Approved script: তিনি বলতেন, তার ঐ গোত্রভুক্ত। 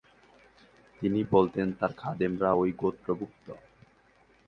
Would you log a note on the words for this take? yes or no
yes